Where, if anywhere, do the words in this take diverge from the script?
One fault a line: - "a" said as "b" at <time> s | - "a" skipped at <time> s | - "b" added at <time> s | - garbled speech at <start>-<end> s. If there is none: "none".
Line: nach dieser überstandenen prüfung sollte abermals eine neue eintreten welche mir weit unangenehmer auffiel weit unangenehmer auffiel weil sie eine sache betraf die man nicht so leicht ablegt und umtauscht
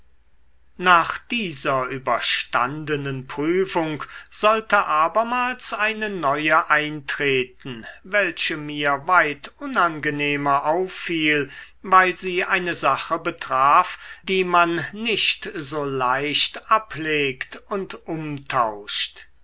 - "weit unangenehmer auffiel" skipped at 11.5 s